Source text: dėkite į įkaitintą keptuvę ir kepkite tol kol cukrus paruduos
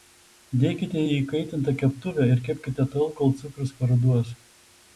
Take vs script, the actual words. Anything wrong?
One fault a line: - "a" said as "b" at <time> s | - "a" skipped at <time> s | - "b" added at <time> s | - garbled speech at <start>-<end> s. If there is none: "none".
none